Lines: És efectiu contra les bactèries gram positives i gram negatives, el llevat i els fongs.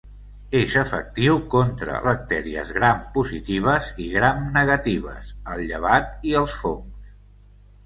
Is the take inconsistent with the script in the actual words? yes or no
yes